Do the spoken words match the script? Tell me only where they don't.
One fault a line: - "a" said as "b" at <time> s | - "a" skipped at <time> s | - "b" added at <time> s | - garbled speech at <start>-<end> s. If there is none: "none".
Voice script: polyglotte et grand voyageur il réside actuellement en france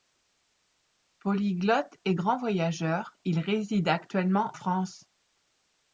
- "en" skipped at 4.5 s